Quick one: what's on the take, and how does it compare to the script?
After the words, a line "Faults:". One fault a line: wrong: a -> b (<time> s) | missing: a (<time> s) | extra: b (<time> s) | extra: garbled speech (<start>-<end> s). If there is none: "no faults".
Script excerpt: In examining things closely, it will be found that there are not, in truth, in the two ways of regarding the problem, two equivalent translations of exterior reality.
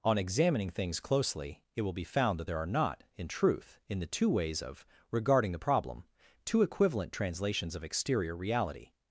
On examining things closely, it will be found that there are not, in truth, in the two ways of regarding the problem, two equivalent translations of exterior reality.
Faults:
wrong: In -> On (0.0 s)